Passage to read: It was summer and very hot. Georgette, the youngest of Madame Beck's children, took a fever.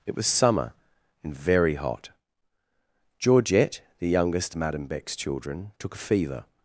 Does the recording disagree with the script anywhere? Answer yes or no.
yes